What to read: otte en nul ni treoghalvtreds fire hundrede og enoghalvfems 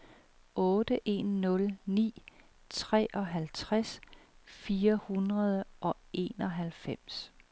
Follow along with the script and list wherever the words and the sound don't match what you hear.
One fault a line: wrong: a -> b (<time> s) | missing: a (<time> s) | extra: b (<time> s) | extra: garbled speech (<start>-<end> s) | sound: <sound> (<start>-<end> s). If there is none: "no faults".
no faults